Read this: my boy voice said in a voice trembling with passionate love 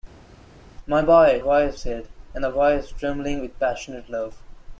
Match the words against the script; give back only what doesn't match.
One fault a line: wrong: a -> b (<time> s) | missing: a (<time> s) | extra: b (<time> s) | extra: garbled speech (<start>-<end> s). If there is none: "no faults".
no faults